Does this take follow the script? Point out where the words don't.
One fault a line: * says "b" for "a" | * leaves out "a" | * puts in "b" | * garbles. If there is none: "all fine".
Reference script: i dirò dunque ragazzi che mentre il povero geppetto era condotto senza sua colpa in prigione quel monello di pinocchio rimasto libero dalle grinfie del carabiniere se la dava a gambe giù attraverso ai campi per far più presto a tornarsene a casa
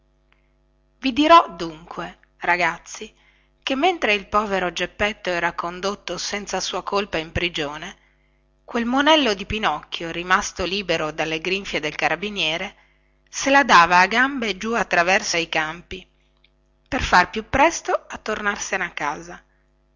all fine